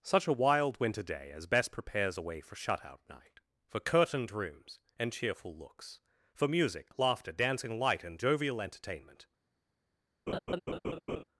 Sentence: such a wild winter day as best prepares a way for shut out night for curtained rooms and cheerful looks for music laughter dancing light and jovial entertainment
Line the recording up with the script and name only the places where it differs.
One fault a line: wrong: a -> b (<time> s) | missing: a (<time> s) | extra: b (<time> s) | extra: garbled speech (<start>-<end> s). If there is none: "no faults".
no faults